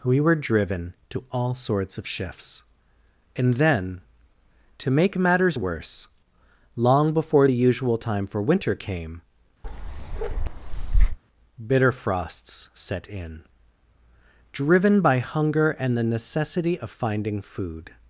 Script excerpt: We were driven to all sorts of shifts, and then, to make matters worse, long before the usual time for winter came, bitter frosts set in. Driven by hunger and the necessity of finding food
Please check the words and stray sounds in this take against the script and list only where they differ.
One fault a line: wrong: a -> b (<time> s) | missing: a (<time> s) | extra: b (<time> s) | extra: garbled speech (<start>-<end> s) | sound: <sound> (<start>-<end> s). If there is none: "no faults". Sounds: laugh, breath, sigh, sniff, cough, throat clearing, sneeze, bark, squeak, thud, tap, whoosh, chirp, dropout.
sound: bark (9.6-11.2 s)